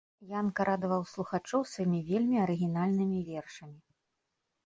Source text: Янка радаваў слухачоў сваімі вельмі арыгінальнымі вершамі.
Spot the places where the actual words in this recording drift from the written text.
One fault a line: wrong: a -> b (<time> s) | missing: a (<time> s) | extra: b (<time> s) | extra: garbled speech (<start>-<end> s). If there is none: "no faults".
no faults